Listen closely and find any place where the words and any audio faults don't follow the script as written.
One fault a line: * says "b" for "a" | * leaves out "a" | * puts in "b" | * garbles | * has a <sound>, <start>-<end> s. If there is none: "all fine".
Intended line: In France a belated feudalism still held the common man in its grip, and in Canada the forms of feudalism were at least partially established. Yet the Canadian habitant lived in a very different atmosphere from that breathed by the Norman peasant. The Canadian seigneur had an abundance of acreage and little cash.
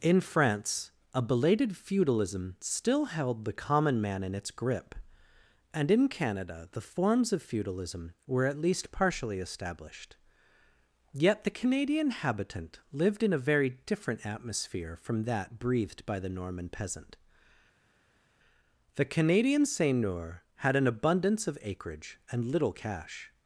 all fine